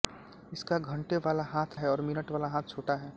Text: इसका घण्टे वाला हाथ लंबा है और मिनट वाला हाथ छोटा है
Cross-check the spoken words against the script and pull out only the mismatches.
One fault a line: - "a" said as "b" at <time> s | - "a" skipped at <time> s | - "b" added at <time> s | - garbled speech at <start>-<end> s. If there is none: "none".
- "लंबा" skipped at 1.8 s